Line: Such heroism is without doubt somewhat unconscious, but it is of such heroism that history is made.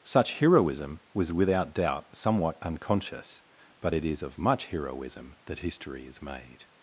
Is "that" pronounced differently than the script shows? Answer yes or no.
no